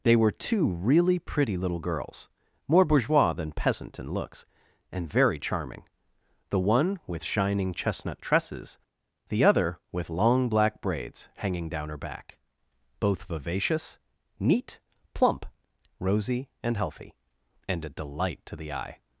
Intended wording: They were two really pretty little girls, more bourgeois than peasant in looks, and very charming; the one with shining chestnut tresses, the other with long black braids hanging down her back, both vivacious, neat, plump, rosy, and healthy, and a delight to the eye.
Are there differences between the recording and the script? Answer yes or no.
no